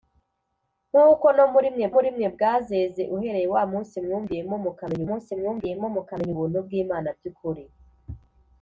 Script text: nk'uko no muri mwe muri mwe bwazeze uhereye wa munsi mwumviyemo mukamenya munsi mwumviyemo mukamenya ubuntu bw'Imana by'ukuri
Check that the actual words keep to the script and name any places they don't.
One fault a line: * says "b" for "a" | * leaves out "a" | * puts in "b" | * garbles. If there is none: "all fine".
all fine